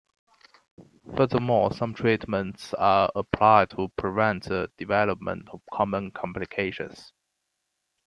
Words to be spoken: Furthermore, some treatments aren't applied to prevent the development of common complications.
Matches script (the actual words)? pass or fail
fail